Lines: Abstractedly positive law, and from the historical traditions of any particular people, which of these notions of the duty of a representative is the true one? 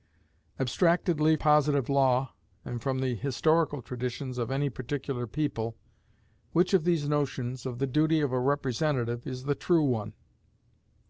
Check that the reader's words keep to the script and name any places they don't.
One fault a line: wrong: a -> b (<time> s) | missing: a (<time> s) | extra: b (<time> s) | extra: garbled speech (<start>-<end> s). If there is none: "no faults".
no faults